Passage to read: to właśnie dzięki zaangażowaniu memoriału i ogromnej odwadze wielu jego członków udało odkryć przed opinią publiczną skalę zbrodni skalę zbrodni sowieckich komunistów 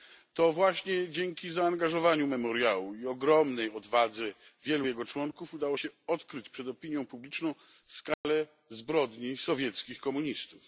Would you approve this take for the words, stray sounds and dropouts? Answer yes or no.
no